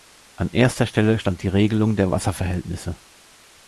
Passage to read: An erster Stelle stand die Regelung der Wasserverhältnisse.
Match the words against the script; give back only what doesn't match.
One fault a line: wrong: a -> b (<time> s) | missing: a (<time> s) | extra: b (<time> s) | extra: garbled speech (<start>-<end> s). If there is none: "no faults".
no faults